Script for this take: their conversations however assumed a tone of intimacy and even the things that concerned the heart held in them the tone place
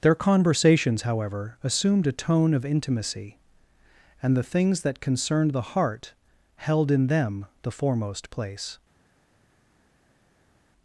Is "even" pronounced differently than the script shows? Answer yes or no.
yes